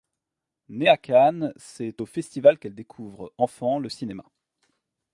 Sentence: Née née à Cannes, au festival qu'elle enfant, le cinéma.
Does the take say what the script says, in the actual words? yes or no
no